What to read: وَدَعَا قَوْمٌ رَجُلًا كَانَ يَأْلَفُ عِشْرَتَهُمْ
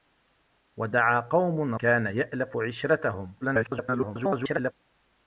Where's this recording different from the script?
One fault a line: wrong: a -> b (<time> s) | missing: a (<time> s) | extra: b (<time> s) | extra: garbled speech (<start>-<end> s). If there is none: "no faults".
missing: رَجُلًا (1.8 s)
extra: garbled speech (3.4-4.7 s)